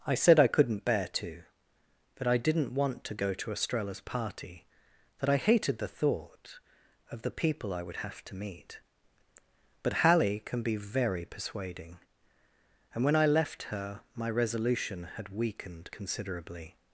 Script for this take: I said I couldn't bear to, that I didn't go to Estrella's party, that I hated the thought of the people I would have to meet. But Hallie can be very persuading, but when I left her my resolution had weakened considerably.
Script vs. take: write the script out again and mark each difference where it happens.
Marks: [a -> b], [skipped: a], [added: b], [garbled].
I said I couldn't bear to, that I didn't [added: want to] go to Estrella's party, that I hated the thought of the people I would have to meet. But Hallie can be very persuading, [but -> and] when I left her my resolution had weakened considerably.